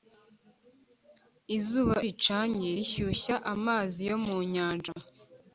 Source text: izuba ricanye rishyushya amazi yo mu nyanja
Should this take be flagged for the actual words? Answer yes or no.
no